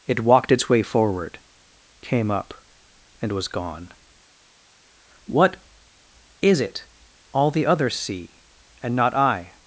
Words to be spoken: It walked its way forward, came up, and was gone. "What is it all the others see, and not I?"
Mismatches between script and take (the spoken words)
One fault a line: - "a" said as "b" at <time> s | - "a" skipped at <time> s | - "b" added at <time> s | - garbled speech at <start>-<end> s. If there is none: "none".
none